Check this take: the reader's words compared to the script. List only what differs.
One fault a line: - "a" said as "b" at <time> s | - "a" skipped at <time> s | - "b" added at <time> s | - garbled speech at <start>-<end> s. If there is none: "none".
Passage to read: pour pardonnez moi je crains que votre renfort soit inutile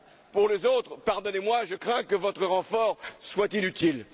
- "les autres" added at 0.5 s